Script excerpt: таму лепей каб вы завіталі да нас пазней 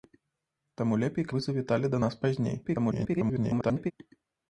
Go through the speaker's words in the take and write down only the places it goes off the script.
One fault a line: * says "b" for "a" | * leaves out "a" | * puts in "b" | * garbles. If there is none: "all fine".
* leaves out "каб"
* garbles